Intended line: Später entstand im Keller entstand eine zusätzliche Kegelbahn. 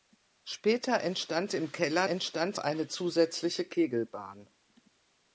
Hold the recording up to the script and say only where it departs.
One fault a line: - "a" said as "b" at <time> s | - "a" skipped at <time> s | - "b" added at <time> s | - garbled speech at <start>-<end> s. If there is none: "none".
none